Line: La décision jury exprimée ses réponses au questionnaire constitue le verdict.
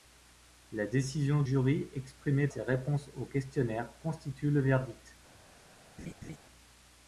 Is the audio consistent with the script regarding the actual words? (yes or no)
yes